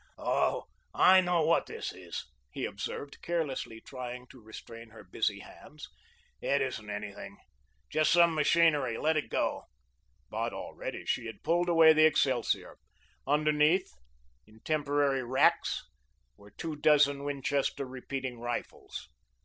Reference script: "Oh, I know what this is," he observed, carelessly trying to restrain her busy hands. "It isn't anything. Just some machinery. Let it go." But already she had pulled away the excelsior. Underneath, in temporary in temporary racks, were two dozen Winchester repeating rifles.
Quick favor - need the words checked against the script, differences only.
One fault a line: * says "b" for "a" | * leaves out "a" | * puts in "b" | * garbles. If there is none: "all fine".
* leaves out "in temporary"